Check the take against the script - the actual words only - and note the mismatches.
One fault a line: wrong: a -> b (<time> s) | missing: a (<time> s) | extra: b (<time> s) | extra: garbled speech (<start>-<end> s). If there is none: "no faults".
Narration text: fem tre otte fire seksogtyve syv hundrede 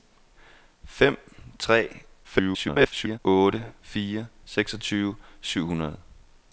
extra: garbled speech (2.2-3.2 s)